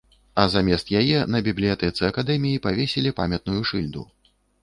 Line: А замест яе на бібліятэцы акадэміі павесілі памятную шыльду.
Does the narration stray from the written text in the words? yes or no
no